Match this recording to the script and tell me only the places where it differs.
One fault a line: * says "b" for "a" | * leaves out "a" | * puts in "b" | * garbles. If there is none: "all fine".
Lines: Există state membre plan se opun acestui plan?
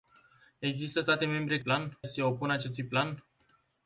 all fine